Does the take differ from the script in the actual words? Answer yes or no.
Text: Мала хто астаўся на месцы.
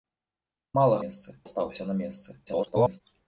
yes